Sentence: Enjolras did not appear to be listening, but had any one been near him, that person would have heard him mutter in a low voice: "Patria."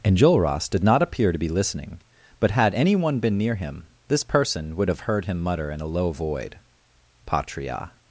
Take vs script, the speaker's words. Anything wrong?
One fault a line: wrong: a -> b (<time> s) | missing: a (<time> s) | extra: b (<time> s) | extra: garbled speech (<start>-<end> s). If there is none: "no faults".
wrong: that -> this (4.1 s)
wrong: voice -> void (6.1 s)